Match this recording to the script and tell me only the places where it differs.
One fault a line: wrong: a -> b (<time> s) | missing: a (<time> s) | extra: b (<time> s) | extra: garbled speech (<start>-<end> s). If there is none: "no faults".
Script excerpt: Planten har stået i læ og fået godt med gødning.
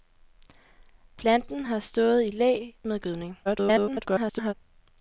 missing: og fået godt (2.7 s)
extra: garbled speech (3.5-4.5 s)